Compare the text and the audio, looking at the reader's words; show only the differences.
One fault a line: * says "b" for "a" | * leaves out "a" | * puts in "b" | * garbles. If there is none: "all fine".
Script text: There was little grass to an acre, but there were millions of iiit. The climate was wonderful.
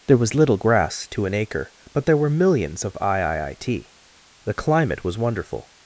all fine